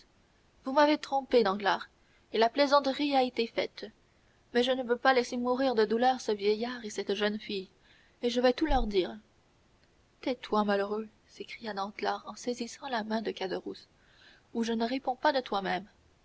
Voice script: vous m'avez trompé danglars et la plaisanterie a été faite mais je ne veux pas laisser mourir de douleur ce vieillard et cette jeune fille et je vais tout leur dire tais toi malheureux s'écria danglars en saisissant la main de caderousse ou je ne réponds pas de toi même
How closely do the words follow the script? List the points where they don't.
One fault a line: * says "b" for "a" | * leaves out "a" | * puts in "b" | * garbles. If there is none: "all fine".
all fine